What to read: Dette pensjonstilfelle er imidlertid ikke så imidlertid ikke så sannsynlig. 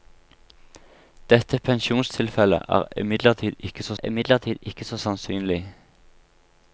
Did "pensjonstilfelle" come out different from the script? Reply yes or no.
no